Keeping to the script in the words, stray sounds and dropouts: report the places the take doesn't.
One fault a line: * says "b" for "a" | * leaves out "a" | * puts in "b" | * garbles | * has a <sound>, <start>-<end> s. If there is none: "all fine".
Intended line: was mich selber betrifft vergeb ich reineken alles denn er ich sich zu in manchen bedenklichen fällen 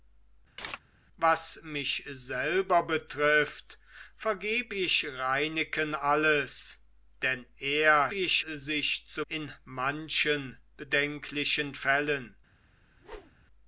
* has a chirp, 0.6-0.8 s
* has a whoosh, 12.8-13.5 s